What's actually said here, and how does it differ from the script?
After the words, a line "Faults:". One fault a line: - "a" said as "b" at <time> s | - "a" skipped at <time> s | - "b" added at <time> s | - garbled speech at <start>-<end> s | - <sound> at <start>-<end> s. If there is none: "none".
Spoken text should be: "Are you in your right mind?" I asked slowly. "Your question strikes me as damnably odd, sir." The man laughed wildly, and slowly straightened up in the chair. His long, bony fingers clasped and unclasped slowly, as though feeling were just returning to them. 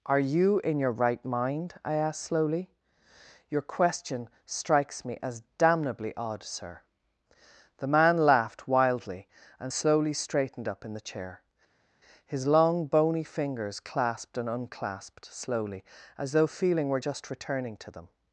"Are you in your right mind?" I asked slowly. "Your question strikes me as damnably odd, sir." The man laughed wildly, and slowly straightened up in the chair. His long, bony fingers clasped and unclasped slowly, as though feeling were just returning to them.
Faults:
none